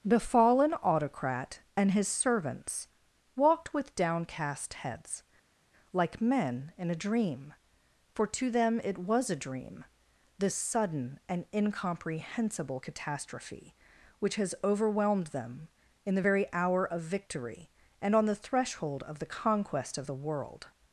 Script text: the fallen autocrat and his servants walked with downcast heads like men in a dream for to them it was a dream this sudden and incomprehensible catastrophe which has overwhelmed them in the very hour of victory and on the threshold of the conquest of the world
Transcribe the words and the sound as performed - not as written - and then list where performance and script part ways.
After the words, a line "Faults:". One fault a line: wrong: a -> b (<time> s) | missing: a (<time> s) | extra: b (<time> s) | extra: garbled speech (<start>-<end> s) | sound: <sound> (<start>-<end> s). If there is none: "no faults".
the fallen autocrat and his servants walked with downcast heads like men in a dream for to them it was a dream this sudden and incomprehensible catastrophe which has overwhelmed them in the very hour of victory and on the threshold of the conquest of the world
Faults:
no faults